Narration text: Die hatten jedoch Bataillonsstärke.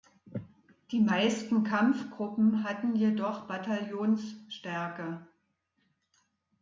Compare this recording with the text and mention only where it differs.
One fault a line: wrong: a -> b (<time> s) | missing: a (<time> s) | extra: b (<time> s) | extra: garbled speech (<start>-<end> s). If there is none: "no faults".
extra: meisten Kampfgruppen (1.0 s)